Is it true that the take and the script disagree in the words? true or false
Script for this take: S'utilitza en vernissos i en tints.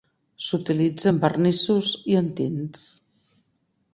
false